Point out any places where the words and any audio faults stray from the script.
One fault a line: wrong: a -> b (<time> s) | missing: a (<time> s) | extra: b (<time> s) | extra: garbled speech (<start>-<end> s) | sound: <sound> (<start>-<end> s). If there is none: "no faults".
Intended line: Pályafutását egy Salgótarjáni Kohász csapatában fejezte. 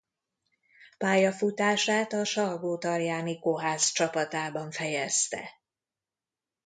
wrong: egy -> a (2.1 s)